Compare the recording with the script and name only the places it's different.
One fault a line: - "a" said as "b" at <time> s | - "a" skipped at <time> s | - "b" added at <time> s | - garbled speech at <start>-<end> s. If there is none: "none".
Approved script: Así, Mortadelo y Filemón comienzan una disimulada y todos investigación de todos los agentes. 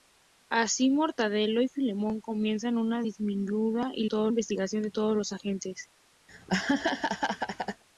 none